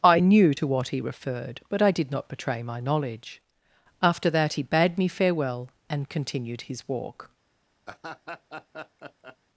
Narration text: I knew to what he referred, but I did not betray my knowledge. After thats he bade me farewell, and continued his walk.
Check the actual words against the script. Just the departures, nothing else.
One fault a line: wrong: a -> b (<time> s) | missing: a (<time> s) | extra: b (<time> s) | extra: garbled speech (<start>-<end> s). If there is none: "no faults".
wrong: thats -> that (4.3 s)